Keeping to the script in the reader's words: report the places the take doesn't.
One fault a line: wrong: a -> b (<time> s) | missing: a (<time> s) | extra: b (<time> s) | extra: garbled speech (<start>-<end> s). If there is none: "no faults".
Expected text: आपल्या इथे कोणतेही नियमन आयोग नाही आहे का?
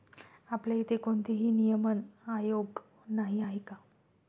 no faults